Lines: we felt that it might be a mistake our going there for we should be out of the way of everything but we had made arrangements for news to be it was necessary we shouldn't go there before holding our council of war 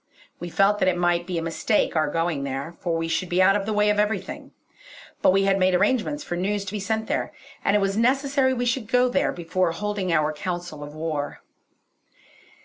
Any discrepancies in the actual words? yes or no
yes